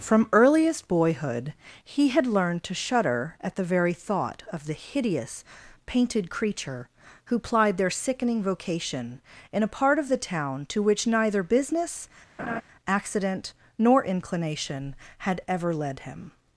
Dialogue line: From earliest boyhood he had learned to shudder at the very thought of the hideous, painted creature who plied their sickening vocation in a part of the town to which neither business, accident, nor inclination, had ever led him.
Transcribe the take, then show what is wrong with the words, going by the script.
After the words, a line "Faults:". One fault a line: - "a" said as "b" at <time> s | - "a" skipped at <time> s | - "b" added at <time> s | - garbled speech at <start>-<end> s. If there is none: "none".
From earliest boyhood he had learned to shudder at the very thought of the hideous, painted creature who plied their sickening vocation in a part of the town to which neither business, accident, nor inclination, had ever led him.
Faults:
none